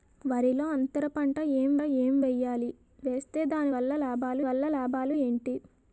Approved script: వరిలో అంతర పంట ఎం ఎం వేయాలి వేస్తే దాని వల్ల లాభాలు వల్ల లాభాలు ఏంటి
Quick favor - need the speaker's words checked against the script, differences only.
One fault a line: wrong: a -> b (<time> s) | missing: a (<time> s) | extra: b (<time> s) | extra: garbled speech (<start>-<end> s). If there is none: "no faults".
no faults